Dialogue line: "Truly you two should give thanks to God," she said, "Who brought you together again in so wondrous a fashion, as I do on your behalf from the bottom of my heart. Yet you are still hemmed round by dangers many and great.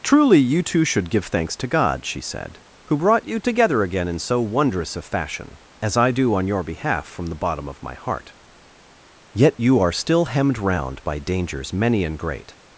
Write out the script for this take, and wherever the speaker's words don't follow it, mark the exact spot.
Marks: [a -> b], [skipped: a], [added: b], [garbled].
"Truly you two should give thanks to God," she said, "Who brought you together again in so wondrous a fashion, as I do on your behalf from the bottom of my heart. Yet you are still hemmed round by dangers many and great.